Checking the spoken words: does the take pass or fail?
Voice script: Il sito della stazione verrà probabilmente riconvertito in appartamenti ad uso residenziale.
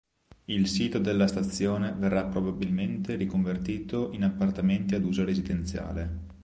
pass